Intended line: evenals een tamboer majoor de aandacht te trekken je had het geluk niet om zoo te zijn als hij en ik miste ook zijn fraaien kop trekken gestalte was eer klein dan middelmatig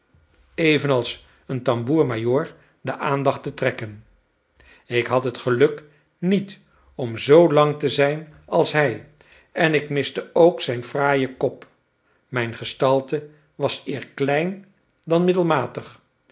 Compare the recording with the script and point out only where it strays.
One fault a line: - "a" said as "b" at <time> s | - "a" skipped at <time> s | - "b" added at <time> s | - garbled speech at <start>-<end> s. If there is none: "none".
- "je" said as "ik" at 4.9 s
- "lang" added at 7.5 s
- "trekken" said as "mijn" at 12.3 s